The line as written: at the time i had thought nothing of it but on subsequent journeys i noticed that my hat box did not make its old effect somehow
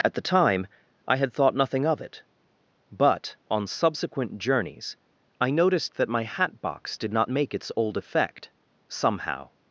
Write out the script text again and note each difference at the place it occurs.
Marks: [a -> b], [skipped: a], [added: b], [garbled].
at the time i had thought nothing of it but on subsequent journeys i noticed that my hat box did not make its old effect somehow